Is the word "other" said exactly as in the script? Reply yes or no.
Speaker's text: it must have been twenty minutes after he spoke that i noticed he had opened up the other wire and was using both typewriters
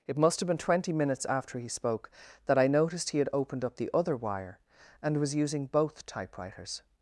yes